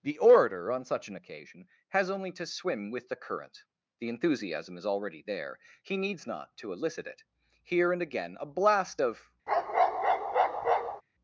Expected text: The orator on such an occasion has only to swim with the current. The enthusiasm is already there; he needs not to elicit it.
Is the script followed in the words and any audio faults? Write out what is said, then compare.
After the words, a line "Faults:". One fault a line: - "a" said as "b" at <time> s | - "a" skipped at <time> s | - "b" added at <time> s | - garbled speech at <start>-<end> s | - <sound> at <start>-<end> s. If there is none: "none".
The orator on such an occasion has only to swim with the current. The enthusiasm is already there; he needs not to elicit it. Here and again a blast of
Faults:
- "Here and again a blast of" added at 7.6 s
- bark at 9.5-11.0 s